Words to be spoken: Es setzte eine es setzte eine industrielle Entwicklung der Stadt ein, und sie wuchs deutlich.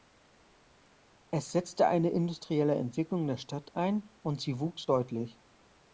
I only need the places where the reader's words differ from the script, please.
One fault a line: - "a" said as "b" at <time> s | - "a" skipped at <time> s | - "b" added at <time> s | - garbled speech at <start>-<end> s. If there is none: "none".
- "es setzte eine" skipped at 2.1 s